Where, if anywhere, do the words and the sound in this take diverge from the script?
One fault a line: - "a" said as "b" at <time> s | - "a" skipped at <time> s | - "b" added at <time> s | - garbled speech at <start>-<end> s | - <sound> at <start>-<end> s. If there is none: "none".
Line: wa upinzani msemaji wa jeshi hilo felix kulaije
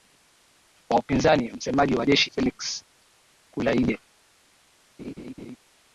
- "hilo" skipped at 2.3 s
- laugh at 5.0-5.6 s